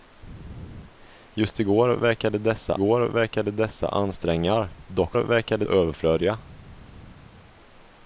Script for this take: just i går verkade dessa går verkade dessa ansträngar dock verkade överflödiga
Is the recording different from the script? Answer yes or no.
no